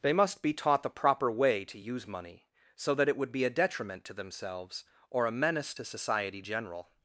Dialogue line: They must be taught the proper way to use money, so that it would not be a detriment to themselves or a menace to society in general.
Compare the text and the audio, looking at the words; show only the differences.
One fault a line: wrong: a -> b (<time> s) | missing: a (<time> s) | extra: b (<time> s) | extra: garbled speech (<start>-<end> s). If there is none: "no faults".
missing: not (3.3 s)
missing: in (6.4 s)